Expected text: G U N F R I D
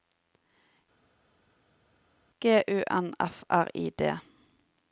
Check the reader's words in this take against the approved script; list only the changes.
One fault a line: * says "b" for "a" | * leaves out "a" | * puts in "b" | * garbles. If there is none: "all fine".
all fine